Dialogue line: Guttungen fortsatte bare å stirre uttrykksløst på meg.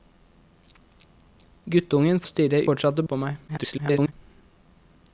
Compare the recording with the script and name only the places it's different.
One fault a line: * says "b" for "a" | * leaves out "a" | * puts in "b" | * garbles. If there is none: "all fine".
* leaves out "fortsatte bare"
* says "fortsatte" for "uttrykksløst"
* garbles